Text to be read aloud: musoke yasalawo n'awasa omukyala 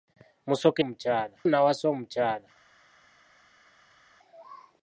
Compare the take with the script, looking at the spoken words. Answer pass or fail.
fail